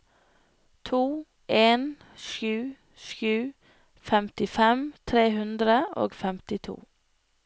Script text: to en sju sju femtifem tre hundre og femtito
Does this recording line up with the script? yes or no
yes